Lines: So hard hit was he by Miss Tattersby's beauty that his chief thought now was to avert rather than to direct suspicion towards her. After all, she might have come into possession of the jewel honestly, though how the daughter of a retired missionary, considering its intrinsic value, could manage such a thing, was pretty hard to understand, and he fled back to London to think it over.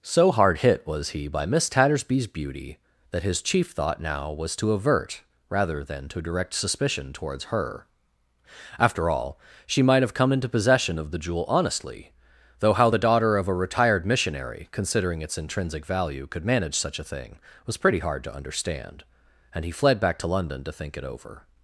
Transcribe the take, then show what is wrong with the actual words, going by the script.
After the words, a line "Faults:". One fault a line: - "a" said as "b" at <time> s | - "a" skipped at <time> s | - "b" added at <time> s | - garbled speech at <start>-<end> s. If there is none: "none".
So hard hit was he by Miss Tattersby's beauty that his chief thought now was to avert rather than to direct suspicion towards her. After all, she might have come into possession of the jewel honestly, though how the daughter of a retired missionary, considering its intrinsic value, could manage such a thing, was pretty hard to understand, and he fled back to London to think it over.
Faults:
none